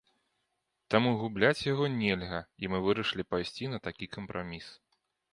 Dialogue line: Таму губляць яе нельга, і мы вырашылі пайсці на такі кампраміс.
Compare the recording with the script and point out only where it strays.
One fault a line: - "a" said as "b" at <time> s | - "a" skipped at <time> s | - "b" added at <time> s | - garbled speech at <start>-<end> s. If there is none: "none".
- "яе" said as "яго" at 1.7 s